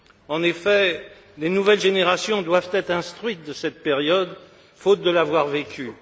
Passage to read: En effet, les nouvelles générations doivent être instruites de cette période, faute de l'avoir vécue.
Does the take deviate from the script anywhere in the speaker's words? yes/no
no